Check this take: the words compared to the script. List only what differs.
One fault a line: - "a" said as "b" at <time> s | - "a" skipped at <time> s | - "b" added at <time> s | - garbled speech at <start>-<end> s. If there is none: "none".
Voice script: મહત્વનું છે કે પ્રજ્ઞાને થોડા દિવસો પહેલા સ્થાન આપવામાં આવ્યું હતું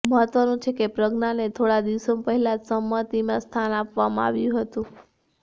- "જ સમિતિમાં" added at 2.6 s